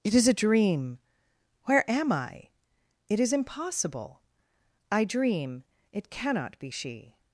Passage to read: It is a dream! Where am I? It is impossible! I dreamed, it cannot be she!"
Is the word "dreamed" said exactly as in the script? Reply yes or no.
no